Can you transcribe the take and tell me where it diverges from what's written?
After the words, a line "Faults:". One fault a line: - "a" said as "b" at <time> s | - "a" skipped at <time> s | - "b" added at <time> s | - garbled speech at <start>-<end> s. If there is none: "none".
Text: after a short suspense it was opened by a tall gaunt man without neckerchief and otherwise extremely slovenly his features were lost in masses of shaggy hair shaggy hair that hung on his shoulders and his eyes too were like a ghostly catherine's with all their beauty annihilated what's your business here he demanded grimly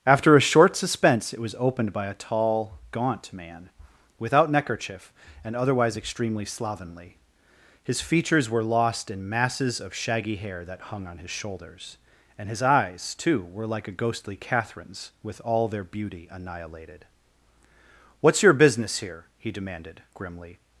after a short suspense it was opened by a tall gaunt man without neckerchief and otherwise extremely slovenly his features were lost in masses of shaggy hair that hung on his shoulders and his eyes too were like a ghostly catherine's with all their beauty annihilated what's your business here he demanded grimly
Faults:
- "shaggy hair" skipped at 10.7 s